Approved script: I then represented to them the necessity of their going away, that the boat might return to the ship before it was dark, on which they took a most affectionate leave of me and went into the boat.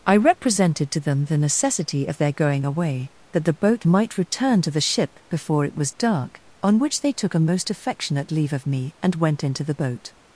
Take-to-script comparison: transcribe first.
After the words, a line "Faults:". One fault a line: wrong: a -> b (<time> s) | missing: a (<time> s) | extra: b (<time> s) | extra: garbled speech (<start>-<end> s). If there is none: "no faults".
I represented to them the necessity of their going away, that the boat might return to the ship before it was dark, on which they took a most affectionate leave of me and went into the boat.
Faults:
missing: then (0.2 s)